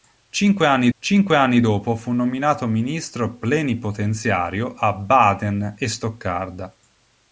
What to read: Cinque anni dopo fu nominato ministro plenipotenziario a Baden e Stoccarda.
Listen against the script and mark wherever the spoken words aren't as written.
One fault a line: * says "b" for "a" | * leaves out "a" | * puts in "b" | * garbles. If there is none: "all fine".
* puts in "cinque anni"